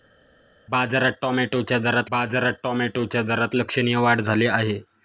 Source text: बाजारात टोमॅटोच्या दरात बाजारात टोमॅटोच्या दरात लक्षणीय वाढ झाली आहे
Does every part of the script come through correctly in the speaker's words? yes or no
yes